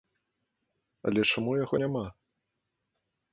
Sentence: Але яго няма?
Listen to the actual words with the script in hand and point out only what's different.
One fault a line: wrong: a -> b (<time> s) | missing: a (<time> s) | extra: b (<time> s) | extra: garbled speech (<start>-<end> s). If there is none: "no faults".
extra: чаму (1.3 s)